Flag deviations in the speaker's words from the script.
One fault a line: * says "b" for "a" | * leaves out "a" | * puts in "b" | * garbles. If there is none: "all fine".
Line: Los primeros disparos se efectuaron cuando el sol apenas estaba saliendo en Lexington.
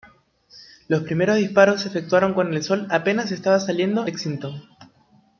* leaves out "en"